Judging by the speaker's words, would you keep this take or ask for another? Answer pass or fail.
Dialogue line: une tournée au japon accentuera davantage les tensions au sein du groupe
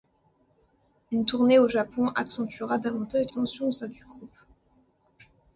fail